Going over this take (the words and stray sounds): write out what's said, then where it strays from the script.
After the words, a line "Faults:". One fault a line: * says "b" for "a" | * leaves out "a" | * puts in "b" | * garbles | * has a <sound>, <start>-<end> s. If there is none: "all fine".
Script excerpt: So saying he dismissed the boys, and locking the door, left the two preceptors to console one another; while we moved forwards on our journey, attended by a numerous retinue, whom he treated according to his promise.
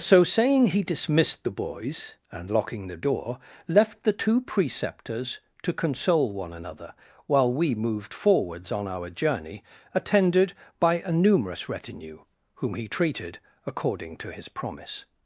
So saying he dismissed the boys, and locking the door, left the two preceptors to console one another; while we moved forwards on our journey, attended by a numerous retinue, whom he treated according to his promise.
Faults:
all fine